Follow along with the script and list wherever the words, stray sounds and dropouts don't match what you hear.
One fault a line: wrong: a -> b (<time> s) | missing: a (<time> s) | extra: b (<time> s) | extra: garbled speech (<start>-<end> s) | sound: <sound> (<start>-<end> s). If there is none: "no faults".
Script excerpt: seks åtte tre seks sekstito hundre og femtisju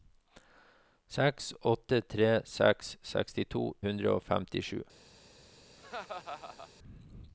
sound: laugh (5.8-6.7 s)